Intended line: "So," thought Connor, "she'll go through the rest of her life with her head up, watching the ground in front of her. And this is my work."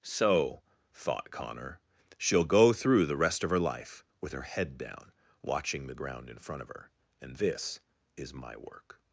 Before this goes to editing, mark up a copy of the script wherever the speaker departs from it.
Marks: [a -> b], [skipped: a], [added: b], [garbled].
"So," thought Connor, "she'll go through the rest of her life with her head [up, -> down] watching the ground in front of her. And this is my work."